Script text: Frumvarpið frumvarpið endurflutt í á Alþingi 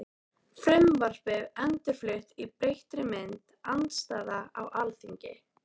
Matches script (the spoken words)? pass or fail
fail